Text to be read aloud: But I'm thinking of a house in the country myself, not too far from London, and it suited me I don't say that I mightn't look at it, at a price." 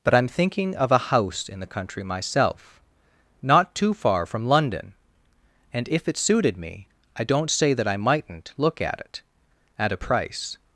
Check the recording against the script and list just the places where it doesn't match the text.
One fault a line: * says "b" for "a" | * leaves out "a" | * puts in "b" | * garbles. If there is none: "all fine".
* puts in "if"